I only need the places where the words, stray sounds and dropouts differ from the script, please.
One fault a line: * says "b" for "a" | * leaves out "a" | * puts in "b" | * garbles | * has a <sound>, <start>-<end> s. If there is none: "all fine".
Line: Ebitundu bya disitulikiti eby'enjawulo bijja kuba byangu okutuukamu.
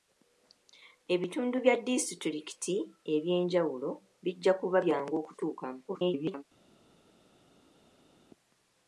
* garbles